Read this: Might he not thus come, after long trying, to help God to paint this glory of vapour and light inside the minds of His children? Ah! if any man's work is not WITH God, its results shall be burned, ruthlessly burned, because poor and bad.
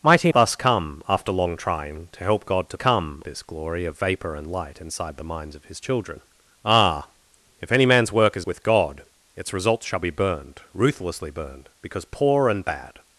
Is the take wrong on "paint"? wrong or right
wrong